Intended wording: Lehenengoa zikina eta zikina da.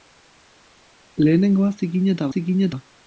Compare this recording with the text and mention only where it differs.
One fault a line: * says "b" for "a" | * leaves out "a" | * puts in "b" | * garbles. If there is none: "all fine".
all fine